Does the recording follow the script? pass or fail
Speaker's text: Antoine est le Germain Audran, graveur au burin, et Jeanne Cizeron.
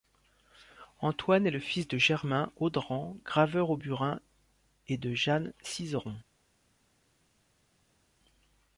fail